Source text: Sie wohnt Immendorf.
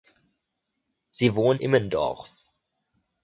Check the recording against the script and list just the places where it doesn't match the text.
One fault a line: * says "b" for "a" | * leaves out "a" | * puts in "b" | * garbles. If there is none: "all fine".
all fine